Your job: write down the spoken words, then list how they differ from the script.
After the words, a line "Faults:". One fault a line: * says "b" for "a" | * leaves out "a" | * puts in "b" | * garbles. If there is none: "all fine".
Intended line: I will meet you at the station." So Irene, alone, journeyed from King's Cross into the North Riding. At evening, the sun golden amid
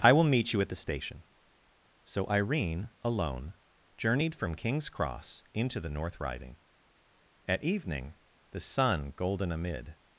I will meet you at the station." So Irene, alone, journeyed from King's Cross into the North Riding. At evening, the sun golden amid
Faults:
all fine